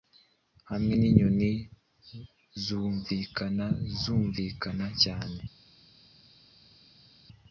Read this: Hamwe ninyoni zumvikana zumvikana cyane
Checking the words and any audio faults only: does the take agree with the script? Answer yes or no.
yes